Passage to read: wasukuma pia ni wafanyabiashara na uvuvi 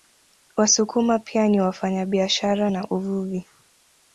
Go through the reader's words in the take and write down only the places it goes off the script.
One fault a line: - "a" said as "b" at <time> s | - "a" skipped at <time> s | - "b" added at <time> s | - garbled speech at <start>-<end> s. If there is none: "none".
none